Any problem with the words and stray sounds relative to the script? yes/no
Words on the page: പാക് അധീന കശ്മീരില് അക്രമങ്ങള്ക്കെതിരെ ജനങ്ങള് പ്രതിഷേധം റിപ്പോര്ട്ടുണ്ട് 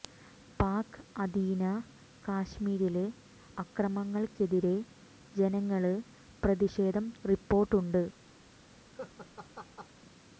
yes